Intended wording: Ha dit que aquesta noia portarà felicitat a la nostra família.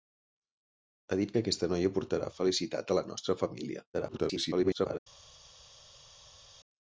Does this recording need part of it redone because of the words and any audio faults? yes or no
yes